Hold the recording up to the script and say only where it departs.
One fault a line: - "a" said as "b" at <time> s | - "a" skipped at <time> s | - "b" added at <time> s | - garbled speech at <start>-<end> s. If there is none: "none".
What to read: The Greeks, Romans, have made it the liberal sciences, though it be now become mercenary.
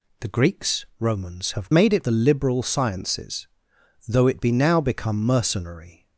none